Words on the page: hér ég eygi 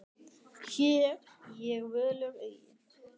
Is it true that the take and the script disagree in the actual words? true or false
true